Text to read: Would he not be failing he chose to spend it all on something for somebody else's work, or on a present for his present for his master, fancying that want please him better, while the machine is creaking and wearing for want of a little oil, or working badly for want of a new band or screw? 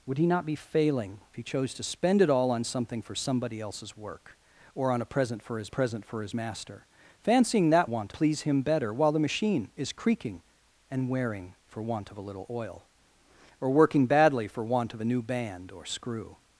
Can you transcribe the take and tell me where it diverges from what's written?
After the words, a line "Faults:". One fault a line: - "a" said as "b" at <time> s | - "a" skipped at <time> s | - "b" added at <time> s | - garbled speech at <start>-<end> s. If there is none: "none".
Would he not be failing he chose to spend it all on something for somebody else's work, or on a present for his present for his master, fancying that want please him better, while the machine is creaking and wearing for want of a little oil, or working badly for want of a new band or screw?
Faults:
none